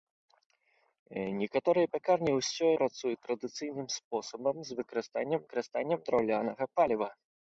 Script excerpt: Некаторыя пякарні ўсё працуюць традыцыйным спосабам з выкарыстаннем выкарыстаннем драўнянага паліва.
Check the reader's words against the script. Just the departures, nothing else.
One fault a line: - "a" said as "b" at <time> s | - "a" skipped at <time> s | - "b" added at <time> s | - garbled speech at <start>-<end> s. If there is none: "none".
none